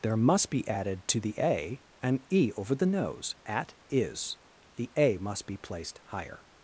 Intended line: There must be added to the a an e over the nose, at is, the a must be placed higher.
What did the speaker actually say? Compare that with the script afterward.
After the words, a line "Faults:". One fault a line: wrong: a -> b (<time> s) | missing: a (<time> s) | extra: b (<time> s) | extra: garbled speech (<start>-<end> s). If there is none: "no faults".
There must be added to the a an e over the nose, at is, the a must be placed higher.
Faults:
no faults